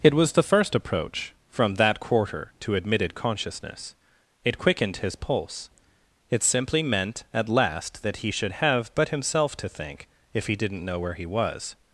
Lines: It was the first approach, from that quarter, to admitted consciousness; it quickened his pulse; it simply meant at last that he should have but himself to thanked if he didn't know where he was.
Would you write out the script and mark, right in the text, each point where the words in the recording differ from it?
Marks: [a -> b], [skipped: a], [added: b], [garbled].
It was the first approach, from that quarter, to admitted consciousness; it quickened his pulse; it simply meant at last that he should have but himself to [thanked -> thank] if he didn't know where he was.